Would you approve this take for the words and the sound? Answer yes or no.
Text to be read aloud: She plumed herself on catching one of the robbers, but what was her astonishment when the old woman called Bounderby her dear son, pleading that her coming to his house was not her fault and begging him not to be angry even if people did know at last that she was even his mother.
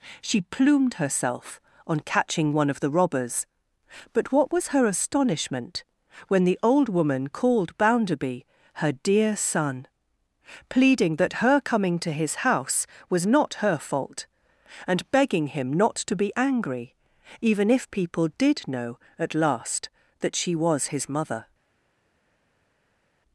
no